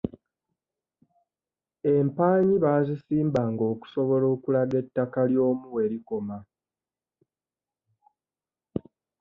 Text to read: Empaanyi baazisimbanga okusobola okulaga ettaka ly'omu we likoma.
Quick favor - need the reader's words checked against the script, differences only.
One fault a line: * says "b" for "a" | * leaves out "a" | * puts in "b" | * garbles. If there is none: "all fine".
all fine